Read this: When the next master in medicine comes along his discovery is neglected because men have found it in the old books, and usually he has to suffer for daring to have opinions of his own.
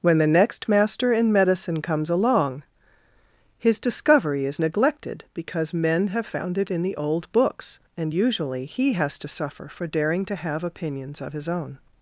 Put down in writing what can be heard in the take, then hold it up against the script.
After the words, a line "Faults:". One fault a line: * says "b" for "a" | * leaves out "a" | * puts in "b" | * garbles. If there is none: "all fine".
When the next master in medicine comes along his discovery is neglected because men have found it in the old books, and usually he has to suffer for daring to have opinions of his own.
Faults:
all fine